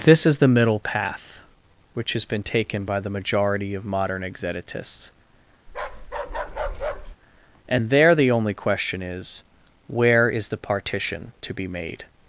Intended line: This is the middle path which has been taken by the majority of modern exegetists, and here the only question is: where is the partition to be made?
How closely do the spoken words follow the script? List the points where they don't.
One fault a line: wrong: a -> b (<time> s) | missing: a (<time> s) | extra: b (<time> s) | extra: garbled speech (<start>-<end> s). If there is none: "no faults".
wrong: here -> there (7.9 s)